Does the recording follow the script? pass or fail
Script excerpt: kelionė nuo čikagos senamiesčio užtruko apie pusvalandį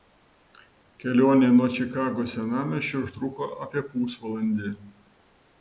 pass